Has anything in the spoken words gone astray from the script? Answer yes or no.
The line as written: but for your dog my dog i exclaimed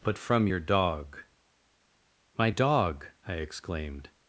yes